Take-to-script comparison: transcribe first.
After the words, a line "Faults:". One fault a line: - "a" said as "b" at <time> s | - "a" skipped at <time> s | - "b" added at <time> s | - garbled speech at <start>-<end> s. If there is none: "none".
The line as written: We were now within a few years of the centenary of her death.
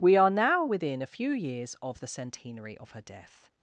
We are now within a few years of the centenary of her death.
Faults:
- "were" said as "are" at 0.2 s